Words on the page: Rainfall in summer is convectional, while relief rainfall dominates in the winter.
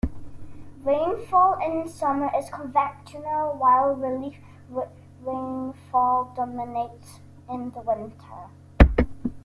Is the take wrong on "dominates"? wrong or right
right